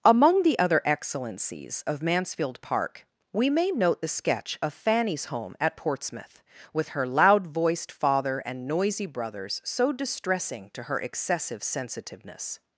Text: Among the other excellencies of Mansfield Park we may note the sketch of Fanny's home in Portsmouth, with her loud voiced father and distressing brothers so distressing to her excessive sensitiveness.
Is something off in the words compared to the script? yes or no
yes